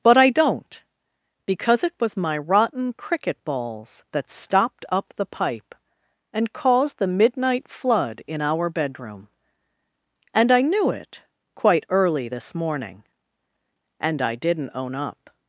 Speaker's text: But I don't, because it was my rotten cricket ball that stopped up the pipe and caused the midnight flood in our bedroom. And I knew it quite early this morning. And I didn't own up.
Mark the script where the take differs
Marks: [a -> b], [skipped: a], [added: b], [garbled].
But I don't, because it was my rotten cricket [ball -> balls] that stopped up the pipe and caused the midnight flood in our bedroom. And I knew it quite early this morning. And I didn't own up.